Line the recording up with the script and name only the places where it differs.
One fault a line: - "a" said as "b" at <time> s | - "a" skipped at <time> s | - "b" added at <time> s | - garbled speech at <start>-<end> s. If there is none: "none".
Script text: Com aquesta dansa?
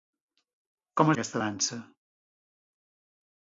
none